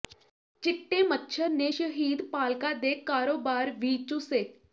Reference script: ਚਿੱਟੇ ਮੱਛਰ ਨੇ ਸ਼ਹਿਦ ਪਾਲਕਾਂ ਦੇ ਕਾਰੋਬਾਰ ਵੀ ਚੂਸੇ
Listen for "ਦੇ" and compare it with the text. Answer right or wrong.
right